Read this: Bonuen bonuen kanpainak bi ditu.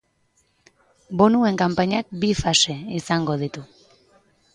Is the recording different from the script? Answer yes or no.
yes